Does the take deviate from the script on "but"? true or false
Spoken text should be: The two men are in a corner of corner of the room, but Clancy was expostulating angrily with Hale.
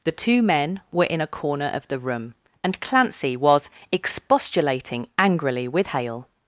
true